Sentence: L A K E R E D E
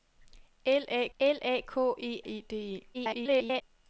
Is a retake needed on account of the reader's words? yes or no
yes